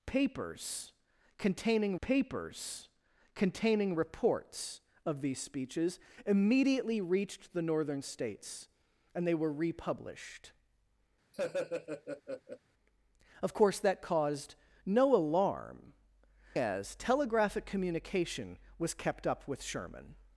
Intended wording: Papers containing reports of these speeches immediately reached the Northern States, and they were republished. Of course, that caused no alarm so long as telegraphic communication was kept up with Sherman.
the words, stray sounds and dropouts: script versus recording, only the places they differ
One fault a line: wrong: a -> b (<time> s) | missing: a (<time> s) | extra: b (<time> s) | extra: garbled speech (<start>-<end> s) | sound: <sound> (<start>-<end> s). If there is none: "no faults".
extra: papers containing (2.0 s)
sound: laugh (11.3-12.6 s)
missing: so long (15.9 s)